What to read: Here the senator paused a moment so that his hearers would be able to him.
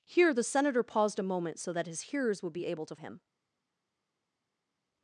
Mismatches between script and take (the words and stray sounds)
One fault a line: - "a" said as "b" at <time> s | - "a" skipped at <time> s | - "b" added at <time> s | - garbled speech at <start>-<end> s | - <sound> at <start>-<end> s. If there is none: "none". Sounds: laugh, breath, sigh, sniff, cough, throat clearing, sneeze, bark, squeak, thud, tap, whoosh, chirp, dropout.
none